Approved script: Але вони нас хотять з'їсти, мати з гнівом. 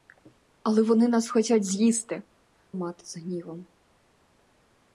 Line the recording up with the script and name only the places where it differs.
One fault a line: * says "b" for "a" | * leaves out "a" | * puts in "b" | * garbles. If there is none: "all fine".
all fine